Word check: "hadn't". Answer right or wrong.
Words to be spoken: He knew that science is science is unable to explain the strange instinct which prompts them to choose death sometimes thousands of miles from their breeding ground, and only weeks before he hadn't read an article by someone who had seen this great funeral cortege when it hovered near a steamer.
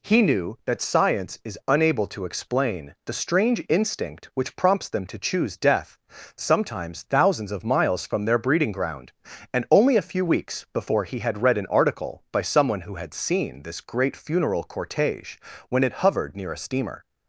wrong